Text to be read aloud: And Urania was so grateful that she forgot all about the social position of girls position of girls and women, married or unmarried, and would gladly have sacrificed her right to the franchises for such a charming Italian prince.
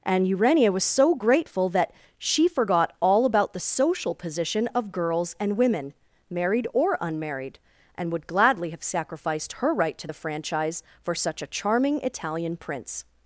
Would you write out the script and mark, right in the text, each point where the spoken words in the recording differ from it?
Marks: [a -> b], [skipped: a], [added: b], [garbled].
And Urania was so grateful that she forgot all about the social position of girls [skipped: position of girls] and women, married or unmarried, and would gladly have sacrificed her right to the [franchises -> franchise] for such a charming Italian prince.